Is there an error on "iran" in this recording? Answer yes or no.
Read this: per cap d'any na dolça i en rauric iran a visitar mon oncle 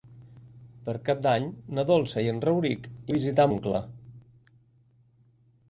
yes